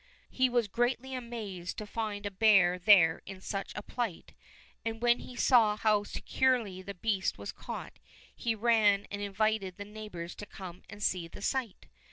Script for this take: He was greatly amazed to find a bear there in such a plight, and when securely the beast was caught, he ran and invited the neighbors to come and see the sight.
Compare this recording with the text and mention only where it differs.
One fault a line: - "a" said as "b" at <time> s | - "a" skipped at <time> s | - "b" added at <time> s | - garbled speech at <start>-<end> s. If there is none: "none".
- "he saw how" added at 5.2 s